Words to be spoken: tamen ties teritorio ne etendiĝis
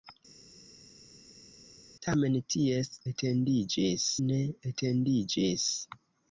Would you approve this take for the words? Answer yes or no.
no